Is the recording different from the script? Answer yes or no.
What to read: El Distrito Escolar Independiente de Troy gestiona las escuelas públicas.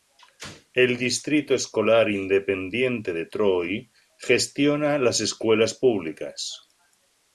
no